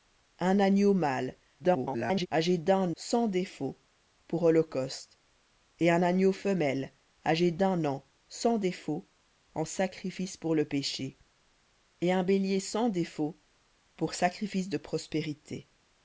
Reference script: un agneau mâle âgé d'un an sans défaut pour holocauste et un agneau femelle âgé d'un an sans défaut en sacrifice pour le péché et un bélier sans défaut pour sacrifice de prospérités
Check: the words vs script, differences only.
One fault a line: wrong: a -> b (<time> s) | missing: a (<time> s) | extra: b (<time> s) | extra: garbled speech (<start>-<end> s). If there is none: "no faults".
extra: garbled speech (1.6-2.3 s)
missing: an (3.0 s)